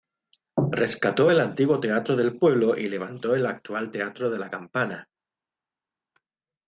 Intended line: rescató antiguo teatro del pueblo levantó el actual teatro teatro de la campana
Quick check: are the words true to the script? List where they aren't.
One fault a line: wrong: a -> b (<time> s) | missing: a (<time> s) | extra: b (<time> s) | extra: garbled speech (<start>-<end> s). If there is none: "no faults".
extra: el (1.3 s)
extra: y (2.8 s)
missing: teatro (4.3 s)